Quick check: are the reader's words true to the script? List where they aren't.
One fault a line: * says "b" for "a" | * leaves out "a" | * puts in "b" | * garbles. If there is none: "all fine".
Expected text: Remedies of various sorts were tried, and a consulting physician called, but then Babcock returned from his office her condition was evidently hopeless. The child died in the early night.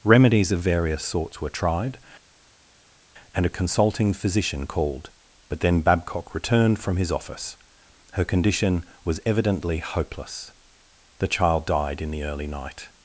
all fine